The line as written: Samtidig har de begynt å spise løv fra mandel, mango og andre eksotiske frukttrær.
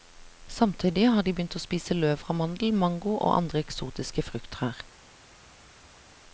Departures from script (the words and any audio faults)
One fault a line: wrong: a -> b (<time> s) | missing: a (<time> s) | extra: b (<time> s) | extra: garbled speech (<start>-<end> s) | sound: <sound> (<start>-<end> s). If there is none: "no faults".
no faults